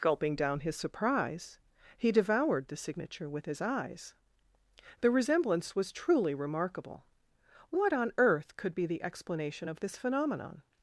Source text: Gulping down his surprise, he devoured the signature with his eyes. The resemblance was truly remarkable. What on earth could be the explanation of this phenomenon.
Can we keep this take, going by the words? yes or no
yes